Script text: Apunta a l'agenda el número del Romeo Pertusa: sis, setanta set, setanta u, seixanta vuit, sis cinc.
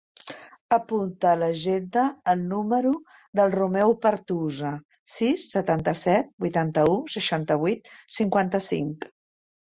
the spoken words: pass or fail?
fail